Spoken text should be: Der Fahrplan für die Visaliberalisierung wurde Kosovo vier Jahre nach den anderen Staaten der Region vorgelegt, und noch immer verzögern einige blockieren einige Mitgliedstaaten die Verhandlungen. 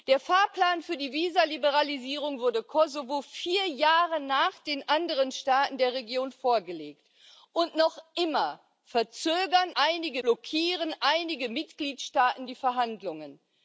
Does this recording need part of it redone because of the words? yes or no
no